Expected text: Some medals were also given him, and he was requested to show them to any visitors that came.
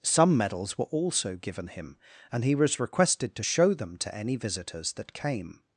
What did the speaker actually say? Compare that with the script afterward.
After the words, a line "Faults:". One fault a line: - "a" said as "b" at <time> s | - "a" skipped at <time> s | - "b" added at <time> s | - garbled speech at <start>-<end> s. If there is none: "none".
Some medals were also given him, and he was requested to show them to any visitors that came.
Faults:
none